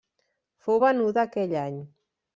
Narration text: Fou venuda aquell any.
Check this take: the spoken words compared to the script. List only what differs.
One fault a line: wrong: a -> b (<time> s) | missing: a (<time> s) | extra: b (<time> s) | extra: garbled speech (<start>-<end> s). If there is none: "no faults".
no faults